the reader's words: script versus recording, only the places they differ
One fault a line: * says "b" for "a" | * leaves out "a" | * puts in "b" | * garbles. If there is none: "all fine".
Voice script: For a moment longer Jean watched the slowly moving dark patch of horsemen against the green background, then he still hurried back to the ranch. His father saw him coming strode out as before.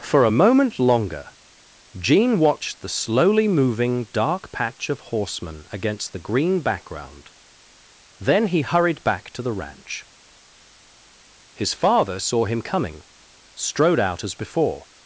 * leaves out "still"